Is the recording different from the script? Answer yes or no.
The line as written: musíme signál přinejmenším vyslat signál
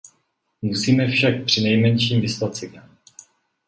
yes